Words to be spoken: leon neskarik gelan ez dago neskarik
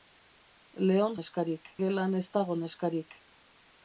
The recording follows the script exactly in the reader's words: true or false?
true